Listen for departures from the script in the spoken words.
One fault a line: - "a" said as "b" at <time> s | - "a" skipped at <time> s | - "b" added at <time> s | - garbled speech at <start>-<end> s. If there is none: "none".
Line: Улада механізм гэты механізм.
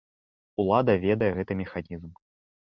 - "механізм" said as "ведае" at 1.0 s